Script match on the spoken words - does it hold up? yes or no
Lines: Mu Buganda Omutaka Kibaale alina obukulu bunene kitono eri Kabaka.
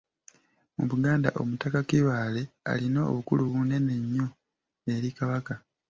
no